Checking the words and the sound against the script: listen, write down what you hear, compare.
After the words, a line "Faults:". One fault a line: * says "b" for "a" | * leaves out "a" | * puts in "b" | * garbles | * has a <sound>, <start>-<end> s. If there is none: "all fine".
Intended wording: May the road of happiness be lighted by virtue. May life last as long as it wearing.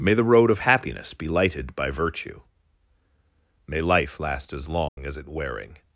May the road of happiness be lighted by virtue. May life last as long as it wearing.
Faults:
* has a dropout, 4.9-5.0 s